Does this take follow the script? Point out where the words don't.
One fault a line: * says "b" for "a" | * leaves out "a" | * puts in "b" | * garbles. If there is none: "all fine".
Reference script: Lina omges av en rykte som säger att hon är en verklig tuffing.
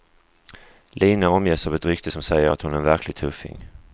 * says "ett" for "en"